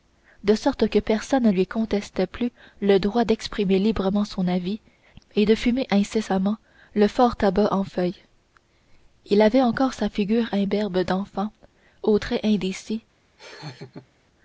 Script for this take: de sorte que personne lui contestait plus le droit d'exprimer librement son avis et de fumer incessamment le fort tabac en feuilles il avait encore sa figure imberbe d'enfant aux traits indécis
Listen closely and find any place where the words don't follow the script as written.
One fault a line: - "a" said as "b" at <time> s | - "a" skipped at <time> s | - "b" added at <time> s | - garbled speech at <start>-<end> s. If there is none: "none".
none